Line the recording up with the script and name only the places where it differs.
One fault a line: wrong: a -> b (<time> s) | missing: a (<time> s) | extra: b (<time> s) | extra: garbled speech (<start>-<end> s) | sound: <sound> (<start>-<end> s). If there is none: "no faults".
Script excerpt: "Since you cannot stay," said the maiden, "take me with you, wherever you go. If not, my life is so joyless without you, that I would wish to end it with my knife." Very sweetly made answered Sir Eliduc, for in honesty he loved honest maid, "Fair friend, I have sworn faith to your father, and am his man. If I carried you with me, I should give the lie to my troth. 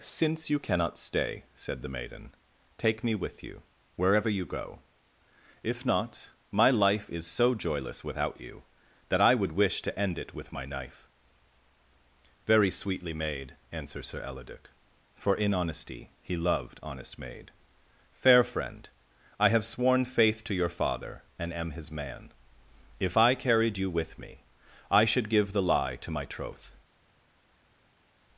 no faults